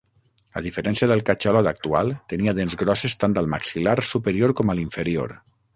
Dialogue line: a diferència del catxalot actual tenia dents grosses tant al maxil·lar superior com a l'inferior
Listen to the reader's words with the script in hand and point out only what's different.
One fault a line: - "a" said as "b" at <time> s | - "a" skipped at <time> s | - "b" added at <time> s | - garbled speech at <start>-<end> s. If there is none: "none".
none